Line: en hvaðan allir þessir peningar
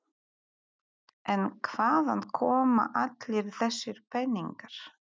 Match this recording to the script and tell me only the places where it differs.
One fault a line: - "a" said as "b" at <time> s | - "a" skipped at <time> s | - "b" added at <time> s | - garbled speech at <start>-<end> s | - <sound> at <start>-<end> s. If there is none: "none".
- "koma" added at 2.4 s